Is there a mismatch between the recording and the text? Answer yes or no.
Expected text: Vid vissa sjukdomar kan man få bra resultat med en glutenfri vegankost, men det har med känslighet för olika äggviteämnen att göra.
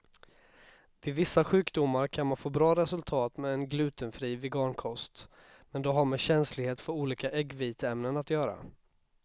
no